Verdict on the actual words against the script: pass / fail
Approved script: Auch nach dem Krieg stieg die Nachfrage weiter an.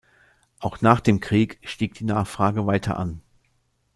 pass